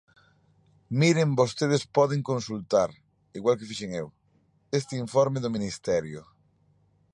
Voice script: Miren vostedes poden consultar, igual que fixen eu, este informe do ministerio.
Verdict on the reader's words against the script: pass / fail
pass